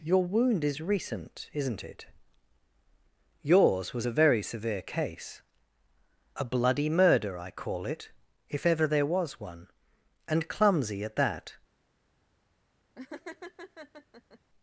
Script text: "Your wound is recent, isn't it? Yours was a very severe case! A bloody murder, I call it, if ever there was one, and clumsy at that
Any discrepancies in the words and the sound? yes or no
yes